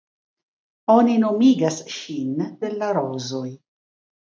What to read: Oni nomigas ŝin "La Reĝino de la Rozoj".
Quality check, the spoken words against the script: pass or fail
fail